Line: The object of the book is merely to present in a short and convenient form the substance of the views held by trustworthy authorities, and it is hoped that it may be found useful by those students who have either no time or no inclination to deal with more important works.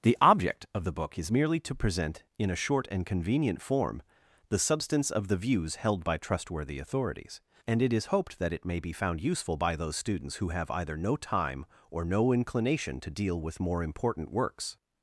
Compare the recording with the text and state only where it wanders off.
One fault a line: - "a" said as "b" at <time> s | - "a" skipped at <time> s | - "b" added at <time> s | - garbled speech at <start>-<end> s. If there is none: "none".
none